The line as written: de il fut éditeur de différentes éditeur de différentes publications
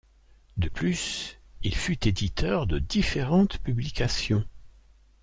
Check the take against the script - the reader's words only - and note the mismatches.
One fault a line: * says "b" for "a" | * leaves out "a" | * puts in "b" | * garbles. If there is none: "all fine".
* puts in "plus"
* leaves out "éditeur de différentes"